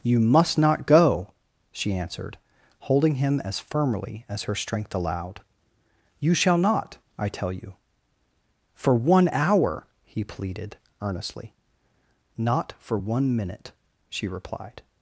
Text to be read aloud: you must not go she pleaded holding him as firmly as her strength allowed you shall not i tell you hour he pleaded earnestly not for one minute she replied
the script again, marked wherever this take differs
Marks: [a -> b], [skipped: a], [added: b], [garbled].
you must not go she [pleaded -> answered] holding him as firmly as her strength allowed you shall not i tell you [added: for one] hour he pleaded earnestly not for one minute she replied